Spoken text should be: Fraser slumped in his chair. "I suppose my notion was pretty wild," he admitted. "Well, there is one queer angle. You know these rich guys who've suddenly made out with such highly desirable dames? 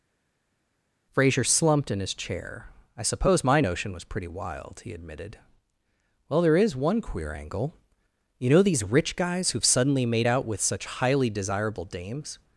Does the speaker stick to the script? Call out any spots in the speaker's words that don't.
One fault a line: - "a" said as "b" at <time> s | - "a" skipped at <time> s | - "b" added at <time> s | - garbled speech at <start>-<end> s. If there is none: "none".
none